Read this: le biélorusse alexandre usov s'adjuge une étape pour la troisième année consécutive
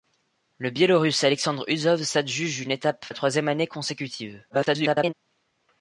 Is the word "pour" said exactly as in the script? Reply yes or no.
no